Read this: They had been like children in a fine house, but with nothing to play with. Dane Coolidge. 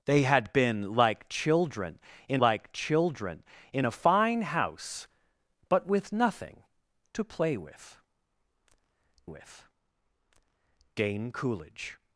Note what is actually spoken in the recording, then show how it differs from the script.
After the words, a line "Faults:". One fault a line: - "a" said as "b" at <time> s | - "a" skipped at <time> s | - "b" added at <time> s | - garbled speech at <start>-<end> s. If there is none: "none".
They had been like children in like children in a fine house, but with nothing to play with with. Dane Coolidge.
Faults:
- "like children in" added at 2.4 s
- "with" added at 9.3 s